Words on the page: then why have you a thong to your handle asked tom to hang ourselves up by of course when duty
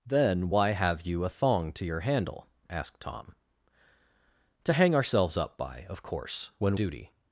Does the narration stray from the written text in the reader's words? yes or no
no